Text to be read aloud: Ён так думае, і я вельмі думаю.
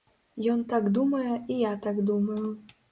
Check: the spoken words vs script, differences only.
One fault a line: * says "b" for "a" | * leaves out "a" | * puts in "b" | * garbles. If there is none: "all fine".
* says "так" for "вельмі"